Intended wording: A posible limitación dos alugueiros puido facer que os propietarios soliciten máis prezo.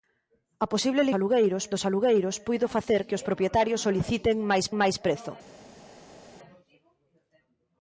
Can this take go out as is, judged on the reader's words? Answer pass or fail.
fail